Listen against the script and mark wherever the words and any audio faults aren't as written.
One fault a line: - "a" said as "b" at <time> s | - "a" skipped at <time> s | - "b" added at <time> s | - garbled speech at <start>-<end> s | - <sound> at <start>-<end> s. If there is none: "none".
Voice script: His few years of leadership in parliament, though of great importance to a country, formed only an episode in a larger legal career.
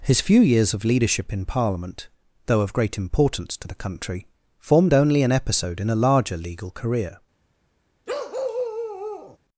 - "a" said as "the" at 3.7 s
- bark at 8.1-9.4 s